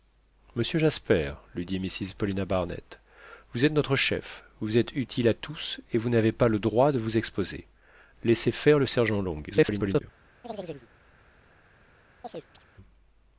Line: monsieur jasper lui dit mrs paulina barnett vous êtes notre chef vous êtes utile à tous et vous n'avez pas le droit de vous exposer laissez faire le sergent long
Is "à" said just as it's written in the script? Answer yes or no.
yes